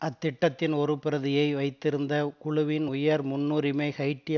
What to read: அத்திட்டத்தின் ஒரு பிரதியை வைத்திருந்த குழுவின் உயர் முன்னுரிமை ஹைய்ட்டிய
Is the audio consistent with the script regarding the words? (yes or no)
yes